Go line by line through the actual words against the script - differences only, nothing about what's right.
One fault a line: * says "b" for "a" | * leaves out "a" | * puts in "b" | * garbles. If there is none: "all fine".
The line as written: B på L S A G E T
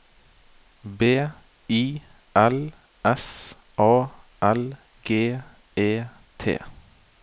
* says "I" for "på"
* puts in "L"